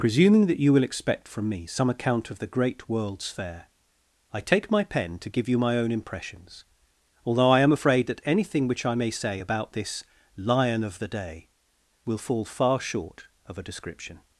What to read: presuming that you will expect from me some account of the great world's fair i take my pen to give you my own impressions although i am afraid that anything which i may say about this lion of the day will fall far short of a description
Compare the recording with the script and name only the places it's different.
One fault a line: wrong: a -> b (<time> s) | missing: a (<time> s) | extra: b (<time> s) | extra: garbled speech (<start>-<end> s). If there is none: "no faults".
no faults